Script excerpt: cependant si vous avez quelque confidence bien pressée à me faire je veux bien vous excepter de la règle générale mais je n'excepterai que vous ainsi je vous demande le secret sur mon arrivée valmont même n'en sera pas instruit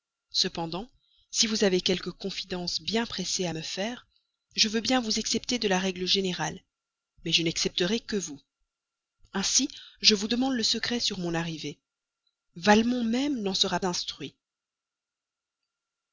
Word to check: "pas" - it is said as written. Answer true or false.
false